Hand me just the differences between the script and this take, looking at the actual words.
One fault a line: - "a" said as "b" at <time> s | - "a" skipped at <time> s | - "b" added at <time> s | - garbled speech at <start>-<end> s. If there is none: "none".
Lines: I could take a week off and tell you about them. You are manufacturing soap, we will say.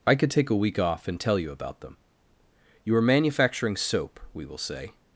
none